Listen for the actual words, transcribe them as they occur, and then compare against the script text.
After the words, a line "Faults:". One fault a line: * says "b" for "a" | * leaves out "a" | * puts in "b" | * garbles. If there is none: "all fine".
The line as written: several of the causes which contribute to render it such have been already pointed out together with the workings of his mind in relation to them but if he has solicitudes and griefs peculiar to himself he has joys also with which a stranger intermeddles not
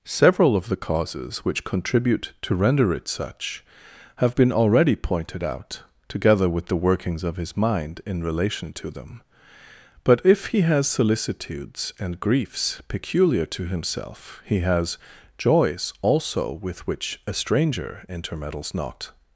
several of the causes which contribute to render it such have been already pointed out together with the workings of his mind in relation to them but if he has solicitudes and griefs peculiar to himself he has joys also with which a stranger intermeddles not
Faults:
all fine